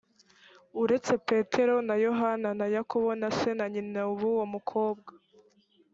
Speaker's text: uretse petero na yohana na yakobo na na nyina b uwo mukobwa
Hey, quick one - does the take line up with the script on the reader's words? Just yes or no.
no